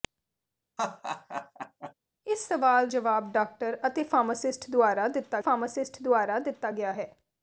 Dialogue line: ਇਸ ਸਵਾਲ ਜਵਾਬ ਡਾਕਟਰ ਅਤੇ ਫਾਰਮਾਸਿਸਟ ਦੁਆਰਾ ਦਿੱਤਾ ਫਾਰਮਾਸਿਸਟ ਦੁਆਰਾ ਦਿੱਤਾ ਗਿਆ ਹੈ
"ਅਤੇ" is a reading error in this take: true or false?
false